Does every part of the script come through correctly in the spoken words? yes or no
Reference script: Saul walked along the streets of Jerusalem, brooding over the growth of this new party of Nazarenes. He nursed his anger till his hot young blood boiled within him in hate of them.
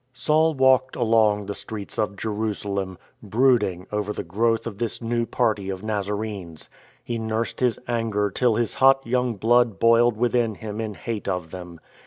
yes